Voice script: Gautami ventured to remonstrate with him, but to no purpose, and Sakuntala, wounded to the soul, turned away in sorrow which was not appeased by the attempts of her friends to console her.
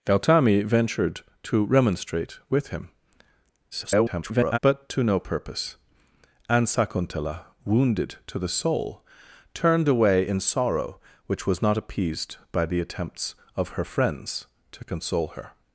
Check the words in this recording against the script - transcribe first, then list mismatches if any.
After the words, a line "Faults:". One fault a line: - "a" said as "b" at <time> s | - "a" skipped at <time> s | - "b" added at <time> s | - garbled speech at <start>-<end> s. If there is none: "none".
Gautami ventured to remonstrate with him, [garbled] but to no purpose, and Sakuntala, wounded to the soul, turned away in sorrow which was not appeased by the attempts of her friends to console her.
Faults:
- garbled speech at 3.7-4.6 s